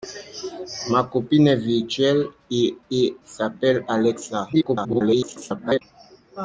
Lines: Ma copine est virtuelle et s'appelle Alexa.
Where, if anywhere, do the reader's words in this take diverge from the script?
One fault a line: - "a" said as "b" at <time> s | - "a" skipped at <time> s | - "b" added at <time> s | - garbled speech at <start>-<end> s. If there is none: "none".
- "et" added at 2.9 s
- garbled speech at 4.5-5.8 s